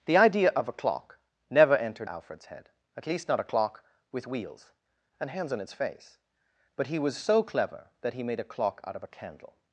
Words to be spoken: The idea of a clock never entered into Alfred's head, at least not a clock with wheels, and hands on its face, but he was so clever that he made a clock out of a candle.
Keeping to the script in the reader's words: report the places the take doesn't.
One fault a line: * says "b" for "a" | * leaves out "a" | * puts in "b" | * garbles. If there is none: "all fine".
* leaves out "into"